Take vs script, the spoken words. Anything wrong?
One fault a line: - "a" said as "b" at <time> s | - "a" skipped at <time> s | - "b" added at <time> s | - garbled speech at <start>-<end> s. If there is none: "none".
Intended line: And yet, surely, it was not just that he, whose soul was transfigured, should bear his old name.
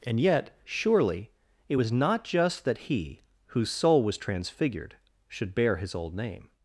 none